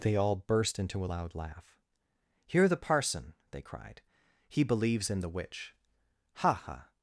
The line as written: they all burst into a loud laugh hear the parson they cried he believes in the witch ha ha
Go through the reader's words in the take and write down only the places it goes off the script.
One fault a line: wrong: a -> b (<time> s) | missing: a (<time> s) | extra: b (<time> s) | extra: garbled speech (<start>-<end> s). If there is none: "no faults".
no faults